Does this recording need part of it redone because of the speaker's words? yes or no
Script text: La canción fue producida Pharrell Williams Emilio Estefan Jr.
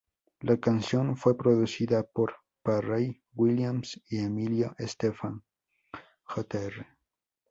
yes